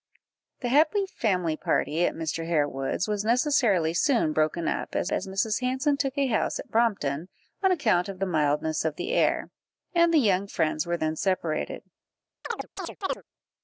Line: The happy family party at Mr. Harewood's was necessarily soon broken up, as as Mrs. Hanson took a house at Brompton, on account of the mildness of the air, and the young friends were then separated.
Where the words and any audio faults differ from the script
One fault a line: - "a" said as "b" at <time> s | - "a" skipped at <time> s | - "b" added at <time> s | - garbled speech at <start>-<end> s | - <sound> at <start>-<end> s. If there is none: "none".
- chirp at 12.4-13.2 s